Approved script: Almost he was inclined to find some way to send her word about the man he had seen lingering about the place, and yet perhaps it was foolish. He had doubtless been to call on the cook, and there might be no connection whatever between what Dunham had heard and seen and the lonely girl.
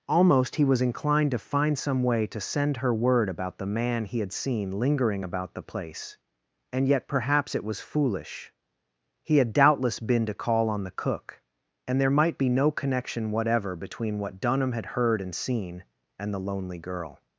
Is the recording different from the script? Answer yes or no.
no